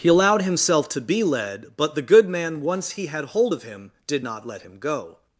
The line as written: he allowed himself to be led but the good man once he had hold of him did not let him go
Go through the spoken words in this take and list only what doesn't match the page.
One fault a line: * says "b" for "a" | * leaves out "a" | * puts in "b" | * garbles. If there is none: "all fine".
all fine